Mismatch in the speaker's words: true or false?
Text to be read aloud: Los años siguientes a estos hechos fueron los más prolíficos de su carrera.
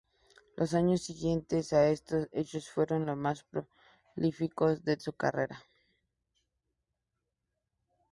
false